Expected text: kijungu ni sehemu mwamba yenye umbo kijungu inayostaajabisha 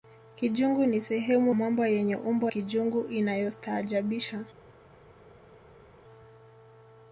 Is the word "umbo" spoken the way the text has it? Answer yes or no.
yes